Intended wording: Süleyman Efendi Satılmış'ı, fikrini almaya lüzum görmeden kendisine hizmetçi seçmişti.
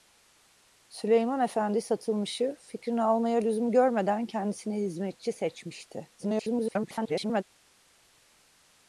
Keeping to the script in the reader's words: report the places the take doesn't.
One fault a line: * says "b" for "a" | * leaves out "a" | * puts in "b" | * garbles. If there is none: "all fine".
* garbles